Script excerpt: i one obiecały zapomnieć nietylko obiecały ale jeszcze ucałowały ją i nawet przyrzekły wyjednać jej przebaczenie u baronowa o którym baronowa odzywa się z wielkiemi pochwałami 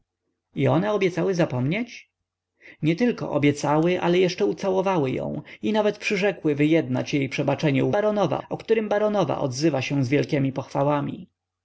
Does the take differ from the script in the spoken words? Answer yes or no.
no